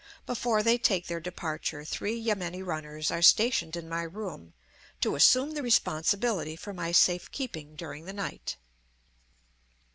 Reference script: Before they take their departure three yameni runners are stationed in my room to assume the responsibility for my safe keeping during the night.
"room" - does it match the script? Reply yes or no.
yes